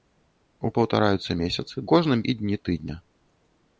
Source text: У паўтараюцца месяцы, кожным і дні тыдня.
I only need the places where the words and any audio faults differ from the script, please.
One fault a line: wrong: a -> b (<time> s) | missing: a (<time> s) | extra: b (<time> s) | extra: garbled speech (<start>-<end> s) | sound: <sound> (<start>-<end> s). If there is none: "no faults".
no faults